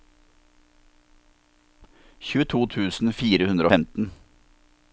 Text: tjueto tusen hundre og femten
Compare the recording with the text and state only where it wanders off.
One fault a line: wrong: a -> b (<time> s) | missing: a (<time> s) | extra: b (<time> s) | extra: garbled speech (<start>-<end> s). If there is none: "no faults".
extra: fire (3.2 s)